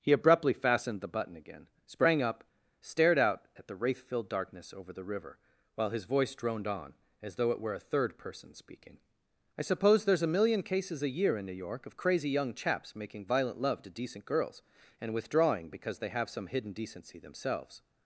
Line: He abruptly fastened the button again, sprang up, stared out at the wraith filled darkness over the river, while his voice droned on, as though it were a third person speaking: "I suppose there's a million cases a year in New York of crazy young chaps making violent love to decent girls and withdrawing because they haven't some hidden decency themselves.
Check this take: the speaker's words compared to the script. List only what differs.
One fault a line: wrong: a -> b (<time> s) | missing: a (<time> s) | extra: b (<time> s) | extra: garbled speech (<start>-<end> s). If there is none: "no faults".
wrong: haven't -> have (16.1 s)